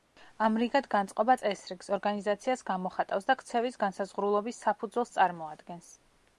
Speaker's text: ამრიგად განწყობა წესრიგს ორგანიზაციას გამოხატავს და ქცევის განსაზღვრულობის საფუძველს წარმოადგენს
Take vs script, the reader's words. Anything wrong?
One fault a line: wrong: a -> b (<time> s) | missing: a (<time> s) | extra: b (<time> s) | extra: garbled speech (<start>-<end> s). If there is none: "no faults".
no faults